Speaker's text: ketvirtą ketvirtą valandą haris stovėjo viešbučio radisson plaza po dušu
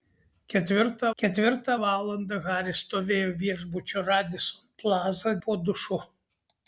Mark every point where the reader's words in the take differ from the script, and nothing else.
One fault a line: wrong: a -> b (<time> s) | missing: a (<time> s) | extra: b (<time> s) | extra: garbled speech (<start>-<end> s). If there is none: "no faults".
no faults